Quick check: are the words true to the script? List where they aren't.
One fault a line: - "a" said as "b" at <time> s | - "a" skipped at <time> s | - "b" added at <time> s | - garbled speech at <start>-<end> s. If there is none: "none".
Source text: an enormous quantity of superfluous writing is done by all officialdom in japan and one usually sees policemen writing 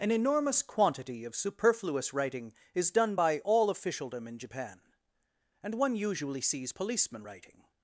none